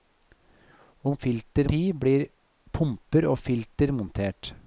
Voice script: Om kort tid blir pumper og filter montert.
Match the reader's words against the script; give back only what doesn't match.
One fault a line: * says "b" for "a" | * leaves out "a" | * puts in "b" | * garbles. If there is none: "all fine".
* says "filter" for "kort"